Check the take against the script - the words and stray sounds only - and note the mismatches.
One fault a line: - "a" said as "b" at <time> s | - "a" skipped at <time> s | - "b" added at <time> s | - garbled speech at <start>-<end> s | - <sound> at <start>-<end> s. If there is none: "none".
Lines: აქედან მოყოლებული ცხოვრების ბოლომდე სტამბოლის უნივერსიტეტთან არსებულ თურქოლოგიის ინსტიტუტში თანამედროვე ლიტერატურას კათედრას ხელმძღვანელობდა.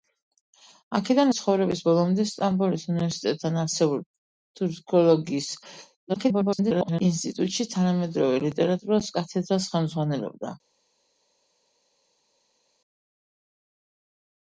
- "მოყოლებული" skipped at 1.3 s
- garbled speech at 6.1-7.0 s